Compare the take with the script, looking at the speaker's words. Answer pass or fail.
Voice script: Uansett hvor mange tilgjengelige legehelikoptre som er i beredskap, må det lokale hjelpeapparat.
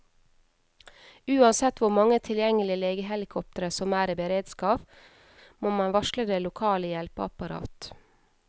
fail